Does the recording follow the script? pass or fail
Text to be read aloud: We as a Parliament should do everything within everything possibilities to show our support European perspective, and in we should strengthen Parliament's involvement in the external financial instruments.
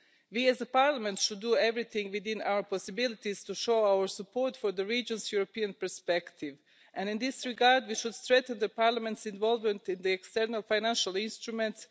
fail